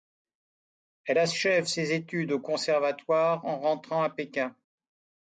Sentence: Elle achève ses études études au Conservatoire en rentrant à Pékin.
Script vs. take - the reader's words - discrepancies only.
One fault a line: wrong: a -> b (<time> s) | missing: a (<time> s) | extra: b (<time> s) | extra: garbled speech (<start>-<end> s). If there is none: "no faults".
missing: études (2.3 s)